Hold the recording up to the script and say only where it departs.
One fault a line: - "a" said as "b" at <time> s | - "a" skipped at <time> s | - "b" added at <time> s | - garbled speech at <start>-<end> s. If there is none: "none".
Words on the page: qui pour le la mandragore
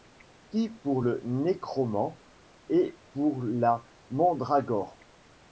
- "nécromant et pour" added at 1.2 s